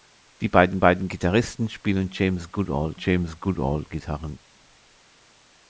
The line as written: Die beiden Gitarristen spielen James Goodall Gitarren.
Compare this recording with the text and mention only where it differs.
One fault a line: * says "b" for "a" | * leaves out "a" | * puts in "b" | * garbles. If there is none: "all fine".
* puts in "beiden"
* puts in "James Goodall"